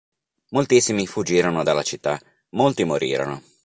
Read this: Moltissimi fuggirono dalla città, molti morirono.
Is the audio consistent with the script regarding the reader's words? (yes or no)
yes